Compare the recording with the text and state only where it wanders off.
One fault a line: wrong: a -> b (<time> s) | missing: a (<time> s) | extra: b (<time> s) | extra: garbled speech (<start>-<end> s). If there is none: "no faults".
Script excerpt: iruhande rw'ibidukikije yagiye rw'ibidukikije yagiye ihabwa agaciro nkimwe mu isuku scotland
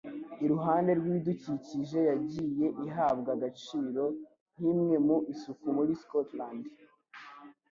missing: rw'ibidukikije yagiye (2.7 s)
extra: muri (5.8 s)